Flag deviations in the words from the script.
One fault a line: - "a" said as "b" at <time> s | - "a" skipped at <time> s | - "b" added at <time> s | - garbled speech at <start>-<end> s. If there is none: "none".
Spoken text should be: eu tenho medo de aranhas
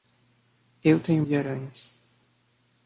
- "medo" skipped at 1.2 s